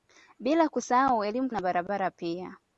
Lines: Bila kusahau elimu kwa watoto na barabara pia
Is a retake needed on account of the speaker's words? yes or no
yes